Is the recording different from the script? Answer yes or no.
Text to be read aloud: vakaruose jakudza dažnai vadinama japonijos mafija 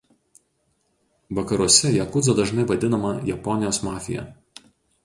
no